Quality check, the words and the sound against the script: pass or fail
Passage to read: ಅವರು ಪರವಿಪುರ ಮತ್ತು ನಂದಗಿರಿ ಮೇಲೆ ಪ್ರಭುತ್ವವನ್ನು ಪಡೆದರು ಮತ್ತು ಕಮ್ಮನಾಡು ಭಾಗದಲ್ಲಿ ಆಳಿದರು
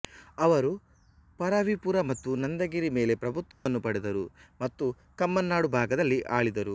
fail